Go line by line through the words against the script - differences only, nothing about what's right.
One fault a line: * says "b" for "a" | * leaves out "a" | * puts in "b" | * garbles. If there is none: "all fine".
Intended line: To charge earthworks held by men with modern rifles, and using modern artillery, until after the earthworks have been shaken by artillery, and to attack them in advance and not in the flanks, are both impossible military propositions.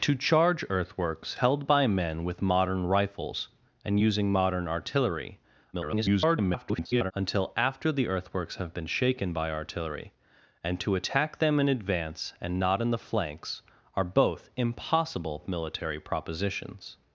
* garbles